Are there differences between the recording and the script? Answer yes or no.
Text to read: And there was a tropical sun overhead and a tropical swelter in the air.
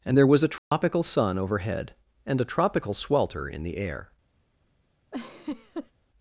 no